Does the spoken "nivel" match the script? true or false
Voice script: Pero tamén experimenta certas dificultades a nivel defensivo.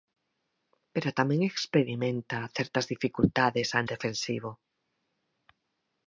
false